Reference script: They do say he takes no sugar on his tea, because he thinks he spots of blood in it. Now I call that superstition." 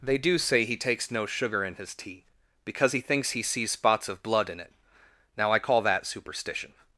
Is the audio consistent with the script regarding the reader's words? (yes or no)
no